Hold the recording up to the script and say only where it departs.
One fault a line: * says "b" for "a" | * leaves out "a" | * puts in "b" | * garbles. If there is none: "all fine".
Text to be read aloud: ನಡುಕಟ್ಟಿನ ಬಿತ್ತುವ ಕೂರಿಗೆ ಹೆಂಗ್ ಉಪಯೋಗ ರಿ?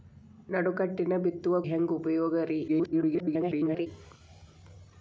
* leaves out "ಕೂರಿಗೆ"
* garbles